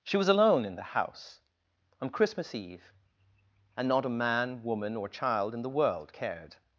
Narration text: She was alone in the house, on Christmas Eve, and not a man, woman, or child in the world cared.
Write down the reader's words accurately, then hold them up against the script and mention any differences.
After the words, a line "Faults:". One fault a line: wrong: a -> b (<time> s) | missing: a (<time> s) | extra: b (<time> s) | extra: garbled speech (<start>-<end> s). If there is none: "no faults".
She was alone in the house, on Christmas Eve, and not a man, woman, or child in the world cared.
Faults:
no faults